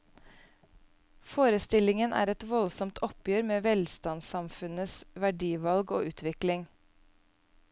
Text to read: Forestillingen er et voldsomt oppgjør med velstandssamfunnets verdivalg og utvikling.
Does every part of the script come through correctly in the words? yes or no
yes